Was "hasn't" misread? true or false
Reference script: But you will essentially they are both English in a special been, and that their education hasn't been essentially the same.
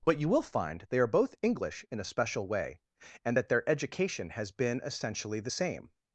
true